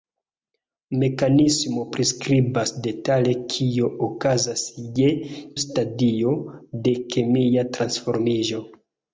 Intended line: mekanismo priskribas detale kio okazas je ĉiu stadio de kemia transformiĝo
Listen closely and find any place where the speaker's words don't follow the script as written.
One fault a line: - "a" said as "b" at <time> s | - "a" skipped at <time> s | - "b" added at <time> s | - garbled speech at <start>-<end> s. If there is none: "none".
- "ĉiu" skipped at 5.1 s